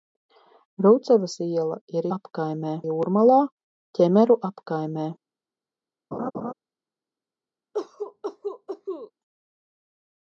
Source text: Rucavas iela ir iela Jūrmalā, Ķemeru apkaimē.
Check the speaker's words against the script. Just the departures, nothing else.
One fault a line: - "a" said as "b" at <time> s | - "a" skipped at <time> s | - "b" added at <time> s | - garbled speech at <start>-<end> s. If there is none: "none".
- "iela" said as "apkaimē" at 2.2 s